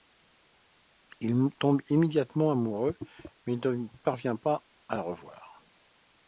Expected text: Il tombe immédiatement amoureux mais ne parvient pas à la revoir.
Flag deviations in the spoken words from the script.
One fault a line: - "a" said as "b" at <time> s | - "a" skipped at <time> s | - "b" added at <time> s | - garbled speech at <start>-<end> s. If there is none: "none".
none